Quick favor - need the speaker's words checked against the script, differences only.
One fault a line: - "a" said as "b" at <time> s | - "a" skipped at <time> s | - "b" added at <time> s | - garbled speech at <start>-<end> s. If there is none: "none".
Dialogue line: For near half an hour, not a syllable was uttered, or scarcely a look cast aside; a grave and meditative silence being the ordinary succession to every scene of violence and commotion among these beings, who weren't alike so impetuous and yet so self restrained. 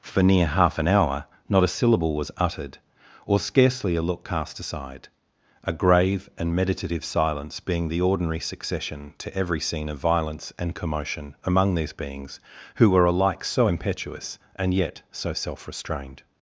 - "weren't" said as "were" at 12.9 s